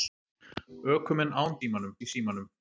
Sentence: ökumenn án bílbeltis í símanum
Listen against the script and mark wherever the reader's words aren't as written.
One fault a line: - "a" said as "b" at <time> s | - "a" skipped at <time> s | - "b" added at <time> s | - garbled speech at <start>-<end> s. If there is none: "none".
- "bílbeltis" said as "símanum" at 1.6 s